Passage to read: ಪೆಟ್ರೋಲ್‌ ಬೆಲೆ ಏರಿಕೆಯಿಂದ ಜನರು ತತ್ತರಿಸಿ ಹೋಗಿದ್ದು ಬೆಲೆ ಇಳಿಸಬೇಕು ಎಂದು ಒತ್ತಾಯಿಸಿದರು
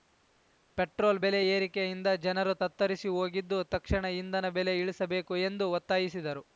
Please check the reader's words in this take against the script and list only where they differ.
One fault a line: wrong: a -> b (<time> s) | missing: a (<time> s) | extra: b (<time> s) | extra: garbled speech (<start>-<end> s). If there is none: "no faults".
extra: ತಕ್ಷಣ ಇಂಧನ (3.7 s)